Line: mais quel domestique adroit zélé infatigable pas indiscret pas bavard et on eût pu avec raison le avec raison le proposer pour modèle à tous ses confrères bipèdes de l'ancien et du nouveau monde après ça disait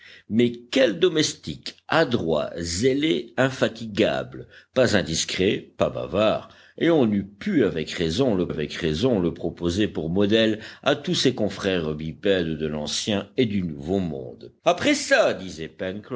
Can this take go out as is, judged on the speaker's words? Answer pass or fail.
pass